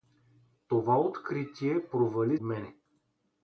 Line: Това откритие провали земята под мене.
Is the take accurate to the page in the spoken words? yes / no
no